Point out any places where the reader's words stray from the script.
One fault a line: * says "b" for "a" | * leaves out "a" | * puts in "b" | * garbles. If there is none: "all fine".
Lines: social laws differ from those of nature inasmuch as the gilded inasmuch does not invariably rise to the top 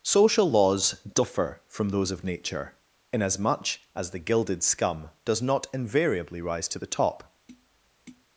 * says "scum" for "inasmuch"